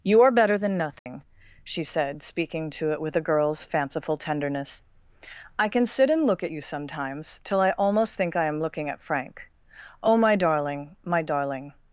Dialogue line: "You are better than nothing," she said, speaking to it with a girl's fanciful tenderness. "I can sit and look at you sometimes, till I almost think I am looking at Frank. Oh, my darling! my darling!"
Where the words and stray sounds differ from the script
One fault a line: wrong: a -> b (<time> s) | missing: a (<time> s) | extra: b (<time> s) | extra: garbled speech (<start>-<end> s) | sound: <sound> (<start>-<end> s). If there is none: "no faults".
sound: dropout (1.0-1.1 s)